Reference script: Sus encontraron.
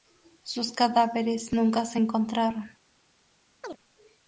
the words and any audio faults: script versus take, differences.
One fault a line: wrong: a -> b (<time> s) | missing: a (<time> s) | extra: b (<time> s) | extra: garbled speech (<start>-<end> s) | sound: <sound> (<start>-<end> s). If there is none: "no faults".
extra: cadáveres nunca se (0.7 s)
sound: chirp (3.6-3.8 s)